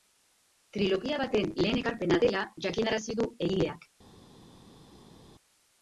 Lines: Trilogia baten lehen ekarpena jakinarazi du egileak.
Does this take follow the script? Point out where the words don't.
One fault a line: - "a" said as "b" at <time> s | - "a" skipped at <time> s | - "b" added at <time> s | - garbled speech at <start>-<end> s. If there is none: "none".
- "dela" added at 2.3 s